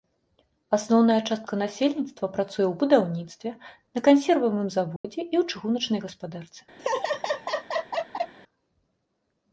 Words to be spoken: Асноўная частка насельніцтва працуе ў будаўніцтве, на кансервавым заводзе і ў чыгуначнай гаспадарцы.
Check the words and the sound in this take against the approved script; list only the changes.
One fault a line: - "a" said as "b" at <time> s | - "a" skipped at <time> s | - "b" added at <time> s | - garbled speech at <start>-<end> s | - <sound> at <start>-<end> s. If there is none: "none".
- dropout at 5.0-5.0 s
- laugh at 6.8-8.3 s